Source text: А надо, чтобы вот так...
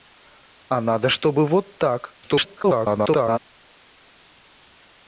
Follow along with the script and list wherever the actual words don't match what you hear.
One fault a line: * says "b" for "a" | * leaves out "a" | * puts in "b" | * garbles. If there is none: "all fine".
* garbles